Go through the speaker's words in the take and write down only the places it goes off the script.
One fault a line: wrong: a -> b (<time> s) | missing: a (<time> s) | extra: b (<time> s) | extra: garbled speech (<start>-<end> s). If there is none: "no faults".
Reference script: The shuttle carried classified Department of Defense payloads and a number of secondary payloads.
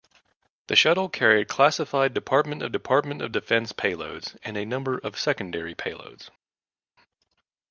extra: Department of (2.7 s)